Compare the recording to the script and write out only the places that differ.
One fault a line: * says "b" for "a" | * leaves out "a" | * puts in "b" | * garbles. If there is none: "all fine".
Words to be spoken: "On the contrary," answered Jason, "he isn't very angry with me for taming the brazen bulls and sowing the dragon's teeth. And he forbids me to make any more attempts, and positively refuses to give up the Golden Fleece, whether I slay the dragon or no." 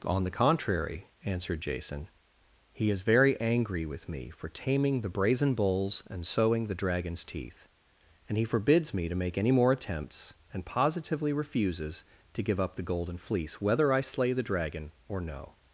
* says "is" for "isn't"